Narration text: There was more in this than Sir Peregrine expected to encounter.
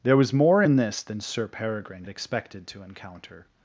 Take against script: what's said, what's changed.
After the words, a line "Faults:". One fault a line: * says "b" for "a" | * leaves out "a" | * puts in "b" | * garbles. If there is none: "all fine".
There was more in this than Sir Peregrine expected to encounter.
Faults:
all fine